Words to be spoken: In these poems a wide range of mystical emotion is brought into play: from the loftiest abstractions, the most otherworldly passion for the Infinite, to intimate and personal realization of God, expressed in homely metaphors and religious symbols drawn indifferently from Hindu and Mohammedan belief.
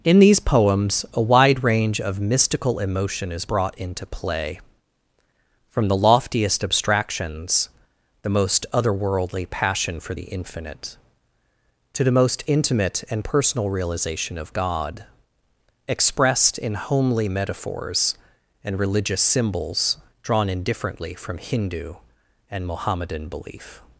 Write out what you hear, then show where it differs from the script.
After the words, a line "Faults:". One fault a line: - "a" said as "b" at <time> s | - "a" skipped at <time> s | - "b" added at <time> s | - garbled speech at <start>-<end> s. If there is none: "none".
In these poems a wide range of mystical emotion is brought into play: from the loftiest abstractions, the most otherworldly passion for the Infinite, to the most intimate and personal realization of God, expressed in homely metaphors and religious symbols drawn indifferently from Hindu and Mohammedan belief.
Faults:
- "the most" added at 12.0 s